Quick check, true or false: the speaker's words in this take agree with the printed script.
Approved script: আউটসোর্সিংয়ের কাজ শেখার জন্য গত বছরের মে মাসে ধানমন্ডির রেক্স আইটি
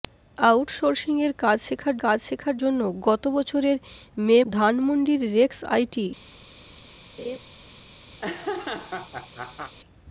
false